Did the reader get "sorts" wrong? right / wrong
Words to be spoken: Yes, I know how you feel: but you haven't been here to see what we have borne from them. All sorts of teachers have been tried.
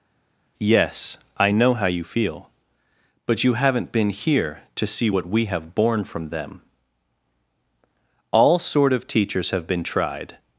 wrong